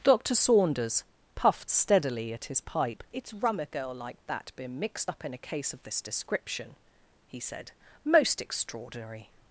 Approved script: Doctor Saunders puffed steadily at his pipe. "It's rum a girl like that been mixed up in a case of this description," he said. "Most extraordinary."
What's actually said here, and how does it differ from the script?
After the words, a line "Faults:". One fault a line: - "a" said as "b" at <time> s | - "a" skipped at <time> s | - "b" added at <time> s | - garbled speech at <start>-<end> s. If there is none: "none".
Doctor Saunders puffed steadily at his pipe. "It's rum a girl like that been mixed up in a case of this description," he said. "Most extraordinary."
Faults:
none